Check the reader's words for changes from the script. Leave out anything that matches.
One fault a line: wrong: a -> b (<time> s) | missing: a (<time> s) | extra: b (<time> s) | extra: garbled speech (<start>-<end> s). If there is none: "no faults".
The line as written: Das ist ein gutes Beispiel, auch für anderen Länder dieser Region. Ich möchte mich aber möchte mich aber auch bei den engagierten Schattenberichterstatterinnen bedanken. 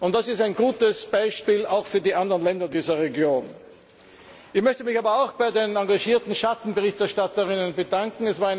extra: die (2.0 s)
missing: möchte mich aber (5.2 s)